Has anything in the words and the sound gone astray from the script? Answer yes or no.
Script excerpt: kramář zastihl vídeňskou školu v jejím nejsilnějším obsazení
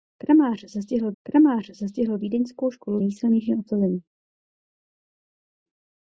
yes